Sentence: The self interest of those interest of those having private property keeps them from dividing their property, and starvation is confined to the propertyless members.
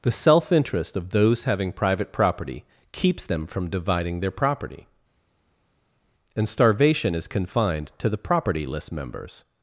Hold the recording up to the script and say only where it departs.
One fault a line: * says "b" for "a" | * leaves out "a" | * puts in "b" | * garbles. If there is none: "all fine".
* leaves out "interest of those"